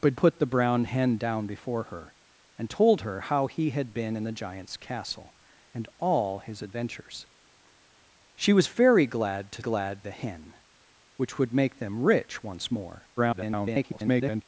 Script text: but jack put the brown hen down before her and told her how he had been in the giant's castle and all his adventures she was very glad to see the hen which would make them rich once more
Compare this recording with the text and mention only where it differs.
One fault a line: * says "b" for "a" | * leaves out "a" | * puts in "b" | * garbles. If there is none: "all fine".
* leaves out "jack"
* says "glad" for "see"
* garbles